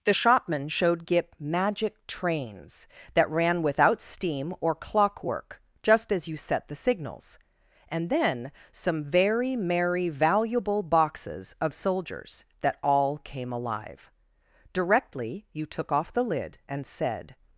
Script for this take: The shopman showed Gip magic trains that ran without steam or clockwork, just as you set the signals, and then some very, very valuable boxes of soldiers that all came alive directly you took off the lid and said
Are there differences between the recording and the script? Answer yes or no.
yes